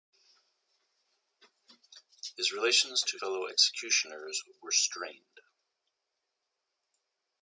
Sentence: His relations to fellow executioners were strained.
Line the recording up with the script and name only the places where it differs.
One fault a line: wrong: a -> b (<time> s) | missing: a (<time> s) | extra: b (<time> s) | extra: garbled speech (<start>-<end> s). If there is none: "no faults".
no faults